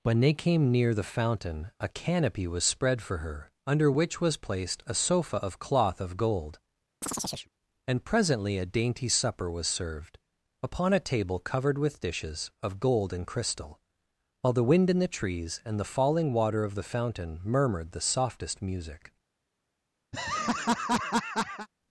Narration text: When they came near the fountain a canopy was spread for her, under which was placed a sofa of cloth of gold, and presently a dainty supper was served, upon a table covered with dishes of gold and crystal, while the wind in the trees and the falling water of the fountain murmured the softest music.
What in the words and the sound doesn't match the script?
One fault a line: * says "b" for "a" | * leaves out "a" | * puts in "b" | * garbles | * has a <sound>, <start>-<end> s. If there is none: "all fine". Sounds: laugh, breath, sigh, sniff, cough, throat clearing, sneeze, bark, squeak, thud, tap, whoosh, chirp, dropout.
* has a chirp, 7.0-7.5 s
* has a laugh, 20.1-21.7 s